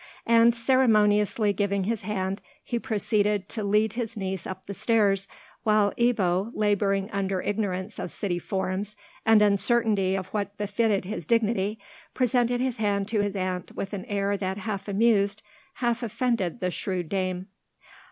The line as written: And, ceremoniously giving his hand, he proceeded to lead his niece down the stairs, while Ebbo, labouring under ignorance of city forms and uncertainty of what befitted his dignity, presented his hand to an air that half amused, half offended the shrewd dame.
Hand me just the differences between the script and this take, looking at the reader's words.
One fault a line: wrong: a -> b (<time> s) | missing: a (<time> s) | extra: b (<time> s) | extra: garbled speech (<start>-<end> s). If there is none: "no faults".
wrong: down -> up (4.5 s)
extra: his aunt with (13.2 s)